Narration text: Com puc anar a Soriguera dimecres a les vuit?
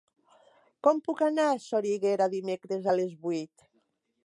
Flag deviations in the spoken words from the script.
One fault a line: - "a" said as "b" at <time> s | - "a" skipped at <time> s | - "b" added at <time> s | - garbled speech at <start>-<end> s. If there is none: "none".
none